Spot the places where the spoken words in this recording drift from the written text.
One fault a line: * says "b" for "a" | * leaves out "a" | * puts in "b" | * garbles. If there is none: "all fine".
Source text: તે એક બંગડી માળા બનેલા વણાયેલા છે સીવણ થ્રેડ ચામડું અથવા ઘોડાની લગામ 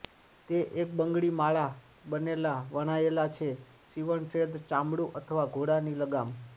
all fine